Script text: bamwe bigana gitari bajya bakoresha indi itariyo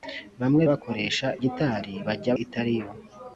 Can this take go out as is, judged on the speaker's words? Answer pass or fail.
fail